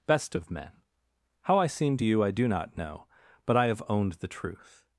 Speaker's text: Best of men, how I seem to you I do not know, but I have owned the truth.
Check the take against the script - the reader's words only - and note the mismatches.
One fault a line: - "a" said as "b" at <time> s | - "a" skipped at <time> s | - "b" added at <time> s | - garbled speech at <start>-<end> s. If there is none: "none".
none